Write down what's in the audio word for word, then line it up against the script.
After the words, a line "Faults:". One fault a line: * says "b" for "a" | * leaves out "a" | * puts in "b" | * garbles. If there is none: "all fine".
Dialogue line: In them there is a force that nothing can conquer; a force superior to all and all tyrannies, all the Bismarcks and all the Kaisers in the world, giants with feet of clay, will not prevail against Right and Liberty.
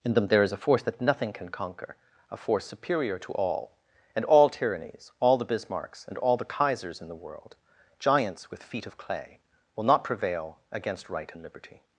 In them there is a force that nothing can conquer; a force superior to all and all tyrannies, all the Bismarcks and all the Kaisers in the world, giants with feet of clay, will not prevail against Right and Liberty.
Faults:
all fine